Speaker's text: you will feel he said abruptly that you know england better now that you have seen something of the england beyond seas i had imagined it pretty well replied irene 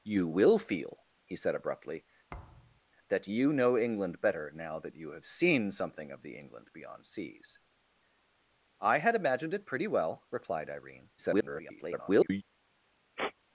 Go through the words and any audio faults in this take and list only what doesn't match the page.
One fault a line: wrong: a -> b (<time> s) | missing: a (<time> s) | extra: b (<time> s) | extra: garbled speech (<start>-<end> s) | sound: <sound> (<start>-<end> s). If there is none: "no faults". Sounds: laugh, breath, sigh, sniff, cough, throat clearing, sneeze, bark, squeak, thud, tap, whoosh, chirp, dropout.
sound: thud (2.3-2.8 s)
extra: garbled speech (11.2-12.4 s)
sound: sniff (13.2-13.3 s)